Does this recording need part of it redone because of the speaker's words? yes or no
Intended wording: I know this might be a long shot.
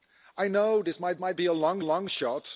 yes